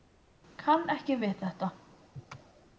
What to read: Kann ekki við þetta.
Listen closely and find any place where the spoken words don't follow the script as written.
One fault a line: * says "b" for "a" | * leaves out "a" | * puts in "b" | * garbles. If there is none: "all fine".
all fine